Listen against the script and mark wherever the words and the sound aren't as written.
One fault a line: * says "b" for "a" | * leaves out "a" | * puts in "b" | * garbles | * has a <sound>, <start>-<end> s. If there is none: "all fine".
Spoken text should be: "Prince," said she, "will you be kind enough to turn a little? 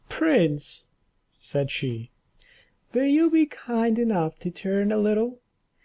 all fine